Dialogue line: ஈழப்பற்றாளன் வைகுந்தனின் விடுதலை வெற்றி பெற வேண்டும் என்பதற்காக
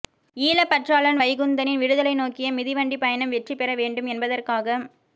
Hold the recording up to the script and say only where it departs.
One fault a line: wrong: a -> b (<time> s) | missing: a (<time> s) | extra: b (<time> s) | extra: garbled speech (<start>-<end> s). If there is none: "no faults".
extra: நோக்கிய மிதிவண்டிப் பயணம் (2.1 s)